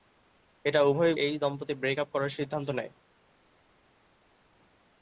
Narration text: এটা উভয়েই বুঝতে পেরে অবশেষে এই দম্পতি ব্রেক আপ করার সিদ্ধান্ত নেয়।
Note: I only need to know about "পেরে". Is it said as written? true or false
false